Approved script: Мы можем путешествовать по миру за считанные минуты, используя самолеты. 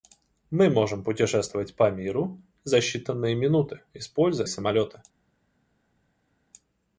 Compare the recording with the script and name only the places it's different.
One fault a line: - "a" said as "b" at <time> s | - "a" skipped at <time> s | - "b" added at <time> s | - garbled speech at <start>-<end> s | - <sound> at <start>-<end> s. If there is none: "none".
none